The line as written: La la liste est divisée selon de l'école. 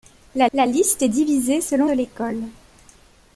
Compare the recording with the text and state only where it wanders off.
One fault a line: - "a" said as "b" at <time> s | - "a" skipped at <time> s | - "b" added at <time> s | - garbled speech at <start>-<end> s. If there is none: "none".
none